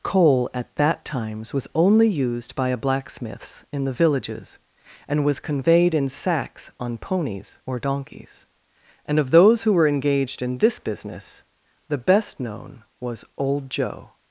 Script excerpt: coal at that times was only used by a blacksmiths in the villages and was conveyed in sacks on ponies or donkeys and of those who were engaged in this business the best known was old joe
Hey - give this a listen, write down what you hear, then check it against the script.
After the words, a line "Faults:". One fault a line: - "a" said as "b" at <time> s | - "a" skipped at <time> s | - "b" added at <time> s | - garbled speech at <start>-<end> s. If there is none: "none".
coal at that times was only used by a blacksmiths in the villages and was conveyed in sacks on ponies or donkeys and of those who were engaged in this business the best known was old joe
Faults:
none